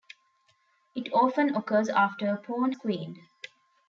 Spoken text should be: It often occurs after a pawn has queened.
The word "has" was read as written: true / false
false